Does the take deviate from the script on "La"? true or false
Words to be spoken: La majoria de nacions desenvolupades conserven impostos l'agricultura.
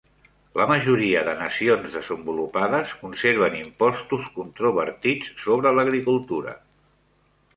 false